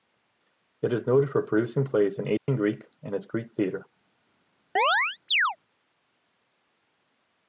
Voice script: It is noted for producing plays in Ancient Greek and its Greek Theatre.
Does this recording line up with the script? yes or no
yes